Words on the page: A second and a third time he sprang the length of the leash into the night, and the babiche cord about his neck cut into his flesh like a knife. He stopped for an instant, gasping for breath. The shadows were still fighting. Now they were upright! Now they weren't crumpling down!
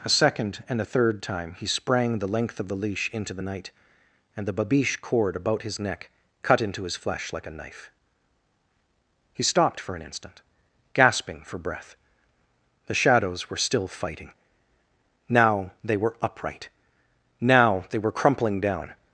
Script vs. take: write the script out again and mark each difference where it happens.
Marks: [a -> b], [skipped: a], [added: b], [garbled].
A second and a third time he sprang the length of the leash into the night, and the babiche cord about his neck cut into his flesh like a knife. He stopped for an instant, gasping for breath. The shadows were still fighting. Now they were upright! Now they [weren't -> were] crumpling down!